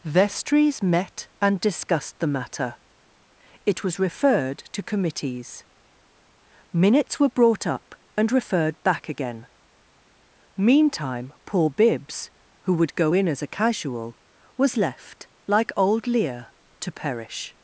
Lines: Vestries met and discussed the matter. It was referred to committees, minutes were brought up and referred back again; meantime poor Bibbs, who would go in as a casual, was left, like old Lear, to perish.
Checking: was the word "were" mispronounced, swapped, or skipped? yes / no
no